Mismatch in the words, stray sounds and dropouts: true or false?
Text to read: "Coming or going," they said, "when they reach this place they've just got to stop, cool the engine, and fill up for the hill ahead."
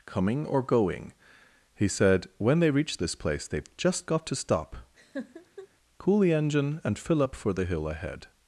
true